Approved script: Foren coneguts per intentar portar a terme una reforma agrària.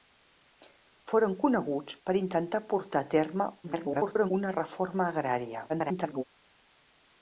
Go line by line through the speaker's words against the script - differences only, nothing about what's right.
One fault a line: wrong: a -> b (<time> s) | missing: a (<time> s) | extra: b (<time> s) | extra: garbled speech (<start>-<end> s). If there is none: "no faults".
extra: garbled speech (3.6-4.3 s)
extra: garbled speech (5.7-6.2 s)